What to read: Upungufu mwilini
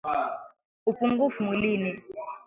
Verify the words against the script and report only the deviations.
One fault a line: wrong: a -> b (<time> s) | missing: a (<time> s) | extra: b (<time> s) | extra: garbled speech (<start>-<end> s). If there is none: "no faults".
no faults